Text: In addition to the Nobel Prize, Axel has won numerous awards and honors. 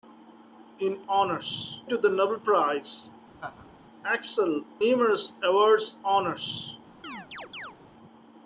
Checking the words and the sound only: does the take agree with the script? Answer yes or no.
no